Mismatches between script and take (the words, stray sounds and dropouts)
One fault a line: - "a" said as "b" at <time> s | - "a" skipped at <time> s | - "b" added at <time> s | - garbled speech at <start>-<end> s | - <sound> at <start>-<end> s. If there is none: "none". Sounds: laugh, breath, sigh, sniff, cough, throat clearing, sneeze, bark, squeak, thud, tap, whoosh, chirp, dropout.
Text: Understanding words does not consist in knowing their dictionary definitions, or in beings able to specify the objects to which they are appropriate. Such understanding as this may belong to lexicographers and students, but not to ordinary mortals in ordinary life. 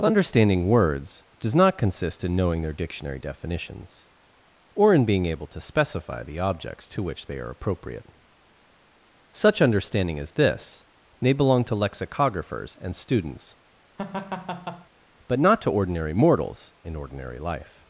- "beings" said as "being" at 5.0 s
- laugh at 14.0-14.9 s